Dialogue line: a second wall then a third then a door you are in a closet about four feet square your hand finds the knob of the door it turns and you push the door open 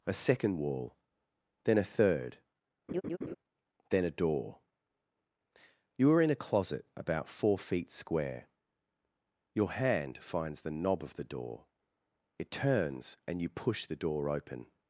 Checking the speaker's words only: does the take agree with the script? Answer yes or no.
yes